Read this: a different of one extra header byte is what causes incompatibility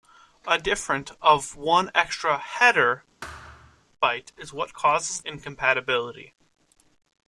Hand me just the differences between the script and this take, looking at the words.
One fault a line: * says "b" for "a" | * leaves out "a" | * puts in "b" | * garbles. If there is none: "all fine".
all fine